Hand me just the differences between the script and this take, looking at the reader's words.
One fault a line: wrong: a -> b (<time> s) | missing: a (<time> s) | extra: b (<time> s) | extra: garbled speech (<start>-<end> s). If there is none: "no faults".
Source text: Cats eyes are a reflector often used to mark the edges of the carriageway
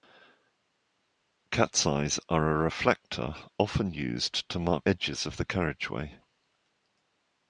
missing: the (4.9 s)